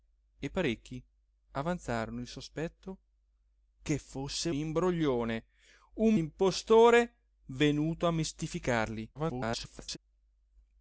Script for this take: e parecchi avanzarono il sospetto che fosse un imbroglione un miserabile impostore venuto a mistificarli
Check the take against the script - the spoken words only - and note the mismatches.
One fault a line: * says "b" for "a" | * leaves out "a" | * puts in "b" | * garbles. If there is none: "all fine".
* leaves out "un"
* leaves out "miserabile"
* garbles